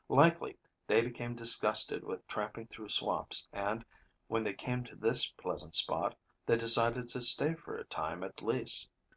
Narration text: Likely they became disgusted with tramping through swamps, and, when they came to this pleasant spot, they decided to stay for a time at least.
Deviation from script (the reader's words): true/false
false